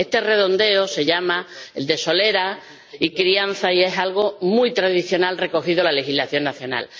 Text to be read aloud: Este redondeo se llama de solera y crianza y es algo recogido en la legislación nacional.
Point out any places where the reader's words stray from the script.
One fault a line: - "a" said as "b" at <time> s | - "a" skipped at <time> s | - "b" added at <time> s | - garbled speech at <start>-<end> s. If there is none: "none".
- "muy tradicional" added at 4.4 s